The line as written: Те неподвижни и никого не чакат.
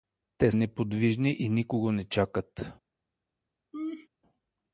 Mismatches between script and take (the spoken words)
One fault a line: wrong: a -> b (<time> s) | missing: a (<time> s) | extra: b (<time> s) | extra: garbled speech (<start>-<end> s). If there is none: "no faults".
no faults